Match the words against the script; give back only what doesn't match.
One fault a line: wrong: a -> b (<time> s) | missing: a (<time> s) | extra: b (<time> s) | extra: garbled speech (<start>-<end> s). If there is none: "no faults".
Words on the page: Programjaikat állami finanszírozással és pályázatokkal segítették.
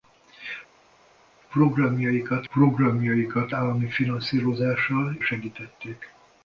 extra: programjaikat (2.5 s)
missing: és pályázatokkal (5.2 s)